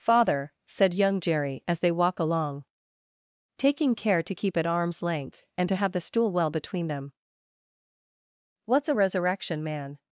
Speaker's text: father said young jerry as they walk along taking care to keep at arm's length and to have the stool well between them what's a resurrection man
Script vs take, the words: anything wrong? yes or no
no